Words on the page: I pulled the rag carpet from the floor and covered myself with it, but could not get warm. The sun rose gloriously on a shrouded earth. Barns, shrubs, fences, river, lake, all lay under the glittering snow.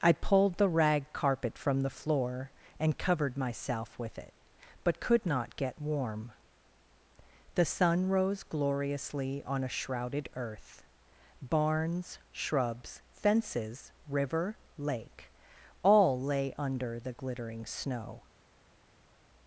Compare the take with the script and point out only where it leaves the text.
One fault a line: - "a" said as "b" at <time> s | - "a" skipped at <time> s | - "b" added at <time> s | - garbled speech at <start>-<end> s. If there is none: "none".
none